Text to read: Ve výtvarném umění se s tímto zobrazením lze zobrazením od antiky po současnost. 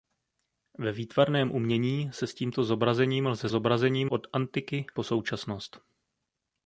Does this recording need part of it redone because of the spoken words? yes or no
no